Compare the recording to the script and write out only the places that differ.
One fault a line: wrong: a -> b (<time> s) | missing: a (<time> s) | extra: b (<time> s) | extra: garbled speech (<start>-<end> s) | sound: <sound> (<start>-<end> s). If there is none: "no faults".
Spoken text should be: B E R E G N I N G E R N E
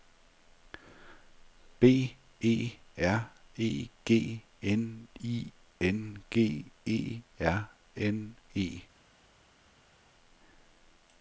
no faults